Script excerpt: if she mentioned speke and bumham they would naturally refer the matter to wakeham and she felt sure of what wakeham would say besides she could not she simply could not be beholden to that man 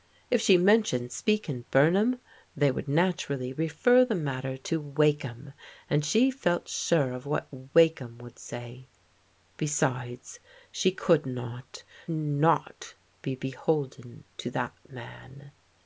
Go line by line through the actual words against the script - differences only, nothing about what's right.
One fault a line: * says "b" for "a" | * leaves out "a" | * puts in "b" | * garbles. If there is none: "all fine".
* leaves out "she simply could"